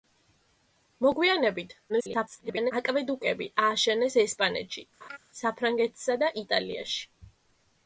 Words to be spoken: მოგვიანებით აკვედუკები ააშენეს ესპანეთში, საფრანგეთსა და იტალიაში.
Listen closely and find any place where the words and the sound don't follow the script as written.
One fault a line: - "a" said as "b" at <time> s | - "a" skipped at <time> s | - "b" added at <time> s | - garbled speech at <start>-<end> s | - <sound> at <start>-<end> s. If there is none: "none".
- garbled speech at 1.9-2.7 s
- laugh at 5.0-5.2 s